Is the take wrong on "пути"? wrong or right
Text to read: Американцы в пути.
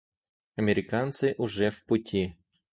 right